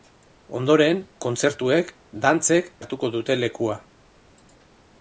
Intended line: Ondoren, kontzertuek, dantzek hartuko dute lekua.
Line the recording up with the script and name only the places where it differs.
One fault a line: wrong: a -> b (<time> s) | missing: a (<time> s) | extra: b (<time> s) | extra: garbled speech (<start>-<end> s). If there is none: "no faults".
no faults